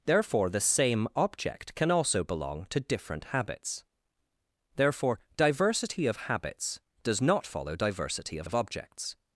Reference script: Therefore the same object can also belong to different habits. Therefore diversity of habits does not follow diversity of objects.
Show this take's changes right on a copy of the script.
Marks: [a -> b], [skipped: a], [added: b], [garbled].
Therefore the same object can also belong to different habits. Therefore diversity of habits does not follow diversity of [added: of] objects.